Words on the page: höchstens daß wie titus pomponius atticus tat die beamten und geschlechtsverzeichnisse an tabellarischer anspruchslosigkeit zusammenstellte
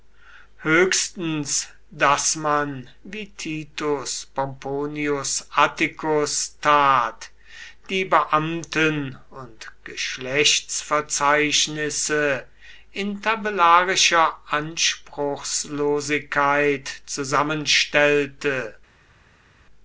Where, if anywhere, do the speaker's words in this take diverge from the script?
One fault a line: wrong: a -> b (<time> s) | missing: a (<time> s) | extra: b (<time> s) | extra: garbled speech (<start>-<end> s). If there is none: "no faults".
extra: man (2.4 s)
wrong: an -> in (12.9 s)